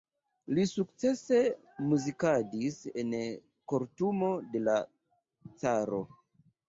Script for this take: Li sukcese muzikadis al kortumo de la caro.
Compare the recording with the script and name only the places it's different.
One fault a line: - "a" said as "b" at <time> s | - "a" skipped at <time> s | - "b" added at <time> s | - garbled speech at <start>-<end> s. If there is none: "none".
- "al" said as "en" at 3.0 s